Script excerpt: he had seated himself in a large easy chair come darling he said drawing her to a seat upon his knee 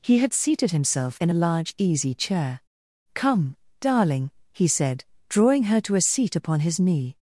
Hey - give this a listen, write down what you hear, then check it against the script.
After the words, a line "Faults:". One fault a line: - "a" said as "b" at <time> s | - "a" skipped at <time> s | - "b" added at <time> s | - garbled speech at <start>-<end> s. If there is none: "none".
he had seated himself in a large easy chair come darling he said drawing her to a seat upon his knee
Faults:
none